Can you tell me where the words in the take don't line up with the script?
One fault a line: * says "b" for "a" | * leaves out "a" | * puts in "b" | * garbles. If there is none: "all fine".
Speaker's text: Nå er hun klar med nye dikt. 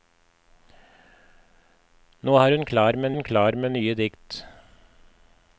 * puts in "hun klar med"